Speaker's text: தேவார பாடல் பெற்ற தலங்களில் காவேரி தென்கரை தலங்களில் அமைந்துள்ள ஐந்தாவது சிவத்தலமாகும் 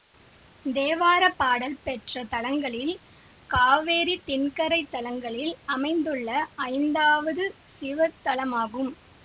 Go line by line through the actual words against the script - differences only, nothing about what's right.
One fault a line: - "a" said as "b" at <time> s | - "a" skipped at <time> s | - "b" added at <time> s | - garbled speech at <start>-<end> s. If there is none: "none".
none